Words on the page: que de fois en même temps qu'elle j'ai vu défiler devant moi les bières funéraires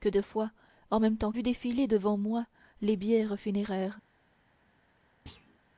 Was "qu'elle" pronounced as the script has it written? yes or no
no